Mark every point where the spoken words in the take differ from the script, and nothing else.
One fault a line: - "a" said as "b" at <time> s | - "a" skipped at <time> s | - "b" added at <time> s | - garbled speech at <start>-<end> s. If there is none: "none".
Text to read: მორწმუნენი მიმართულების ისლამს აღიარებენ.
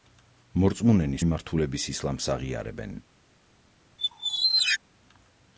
none